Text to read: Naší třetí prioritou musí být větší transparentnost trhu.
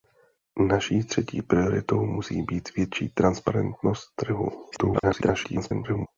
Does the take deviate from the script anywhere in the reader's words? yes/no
yes